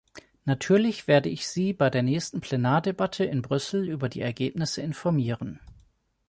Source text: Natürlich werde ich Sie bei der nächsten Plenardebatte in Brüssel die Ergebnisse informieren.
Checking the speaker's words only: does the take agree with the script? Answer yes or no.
no